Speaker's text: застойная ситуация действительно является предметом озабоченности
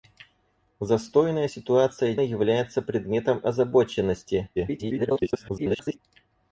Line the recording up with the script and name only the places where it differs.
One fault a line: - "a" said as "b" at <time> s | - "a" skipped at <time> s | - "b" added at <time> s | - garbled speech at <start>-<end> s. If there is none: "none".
- "действительно" skipped at 2.1 s
- garbled speech at 4.6-6.0 s